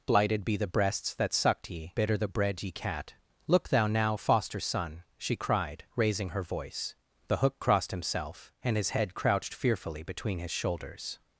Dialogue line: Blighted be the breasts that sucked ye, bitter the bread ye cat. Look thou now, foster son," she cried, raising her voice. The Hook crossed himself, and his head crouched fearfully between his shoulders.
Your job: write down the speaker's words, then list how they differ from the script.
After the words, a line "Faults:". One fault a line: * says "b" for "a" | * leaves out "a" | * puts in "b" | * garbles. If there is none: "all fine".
Blighted be the breasts that sucked ye, bitter the bread ye cat. Look thou now, foster son," she cried, raising her voice. The Hook crossed himself, and his head crouched fearfully between his shoulders.
Faults:
all fine